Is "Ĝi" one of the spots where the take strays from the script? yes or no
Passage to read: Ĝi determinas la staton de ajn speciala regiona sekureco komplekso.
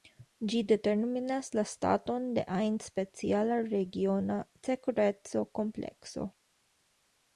no